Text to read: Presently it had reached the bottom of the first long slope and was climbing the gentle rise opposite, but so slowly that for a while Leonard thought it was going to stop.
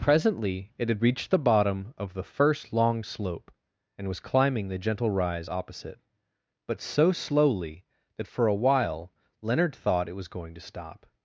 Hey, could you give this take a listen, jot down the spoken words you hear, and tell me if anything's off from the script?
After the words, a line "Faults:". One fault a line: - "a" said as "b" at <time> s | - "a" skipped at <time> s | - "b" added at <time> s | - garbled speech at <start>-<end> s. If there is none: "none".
Presently it had reached the bottom of the first long slope and was climbing the gentle rise opposite, but so slowly that for a while Leonard thought it was going to stop.
Faults:
none